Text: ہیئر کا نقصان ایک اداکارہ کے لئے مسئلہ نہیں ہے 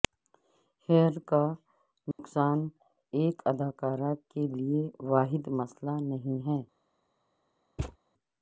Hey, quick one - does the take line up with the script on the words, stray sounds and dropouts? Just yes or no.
no